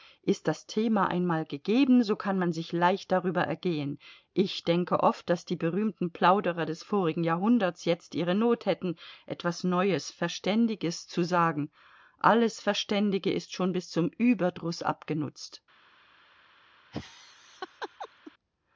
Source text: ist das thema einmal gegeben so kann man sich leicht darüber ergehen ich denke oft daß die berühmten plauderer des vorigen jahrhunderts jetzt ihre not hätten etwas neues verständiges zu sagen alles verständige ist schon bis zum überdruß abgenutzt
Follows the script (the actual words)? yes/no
yes